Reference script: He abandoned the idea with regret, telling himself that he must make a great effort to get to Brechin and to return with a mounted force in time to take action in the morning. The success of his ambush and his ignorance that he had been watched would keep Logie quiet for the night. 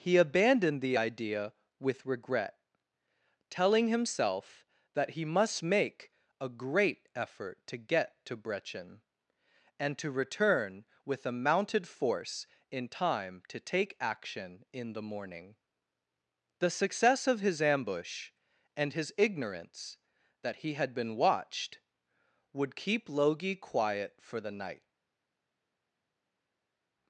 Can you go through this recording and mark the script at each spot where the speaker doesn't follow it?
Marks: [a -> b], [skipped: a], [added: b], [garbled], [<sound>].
He abandoned the idea with regret, telling himself that he must make a great effort to get to Brechin and to return with a mounted force in time to take action in the morning. The success of his ambush and his ignorance that he had been watched would keep Logie quiet for the night.